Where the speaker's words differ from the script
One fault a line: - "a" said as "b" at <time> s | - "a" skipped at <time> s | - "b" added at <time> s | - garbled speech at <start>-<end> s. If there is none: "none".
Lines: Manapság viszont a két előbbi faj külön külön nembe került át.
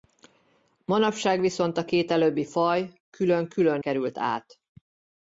- "nembe" skipped at 3.8 s